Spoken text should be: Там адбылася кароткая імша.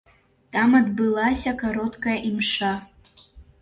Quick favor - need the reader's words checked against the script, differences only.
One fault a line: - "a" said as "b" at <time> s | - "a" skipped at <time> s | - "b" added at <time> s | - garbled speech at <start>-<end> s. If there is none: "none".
none